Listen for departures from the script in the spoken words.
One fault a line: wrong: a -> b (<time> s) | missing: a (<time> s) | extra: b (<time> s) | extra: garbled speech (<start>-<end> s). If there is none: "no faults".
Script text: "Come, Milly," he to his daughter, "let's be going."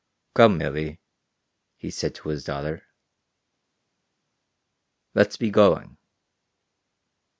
extra: said (1.9 s)